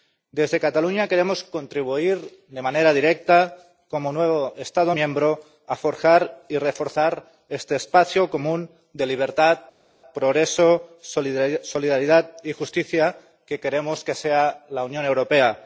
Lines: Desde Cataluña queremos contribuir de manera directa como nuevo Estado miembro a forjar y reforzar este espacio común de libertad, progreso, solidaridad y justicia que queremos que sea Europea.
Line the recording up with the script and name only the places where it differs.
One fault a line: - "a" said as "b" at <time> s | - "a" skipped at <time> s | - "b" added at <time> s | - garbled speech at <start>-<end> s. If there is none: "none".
- "la Unión" added at 14.7 s